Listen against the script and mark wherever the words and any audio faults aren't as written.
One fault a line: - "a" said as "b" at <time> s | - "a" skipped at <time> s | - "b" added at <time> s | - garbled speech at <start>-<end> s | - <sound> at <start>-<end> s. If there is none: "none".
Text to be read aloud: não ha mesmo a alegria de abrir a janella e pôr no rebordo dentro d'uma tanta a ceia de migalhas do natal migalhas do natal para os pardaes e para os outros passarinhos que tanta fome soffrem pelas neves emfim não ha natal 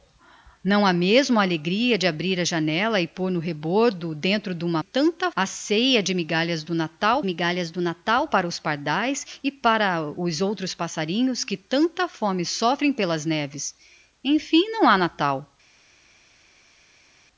none